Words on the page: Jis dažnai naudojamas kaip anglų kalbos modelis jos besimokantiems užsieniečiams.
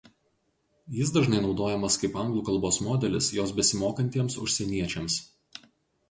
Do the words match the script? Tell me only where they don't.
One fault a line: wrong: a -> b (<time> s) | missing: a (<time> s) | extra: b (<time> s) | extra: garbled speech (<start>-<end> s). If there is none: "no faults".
no faults